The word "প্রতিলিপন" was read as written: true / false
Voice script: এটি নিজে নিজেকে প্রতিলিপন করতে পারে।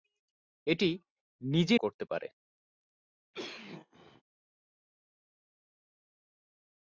false